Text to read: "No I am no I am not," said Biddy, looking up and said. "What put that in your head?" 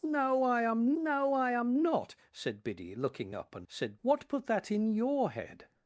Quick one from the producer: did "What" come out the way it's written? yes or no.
yes